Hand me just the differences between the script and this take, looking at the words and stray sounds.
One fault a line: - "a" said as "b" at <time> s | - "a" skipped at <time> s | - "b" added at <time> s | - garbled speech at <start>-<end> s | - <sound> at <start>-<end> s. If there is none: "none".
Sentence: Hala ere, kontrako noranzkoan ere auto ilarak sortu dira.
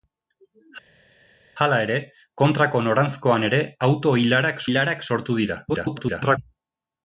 - "ilarak" added at 4.7 s
- garbled speech at 5.7-6.4 s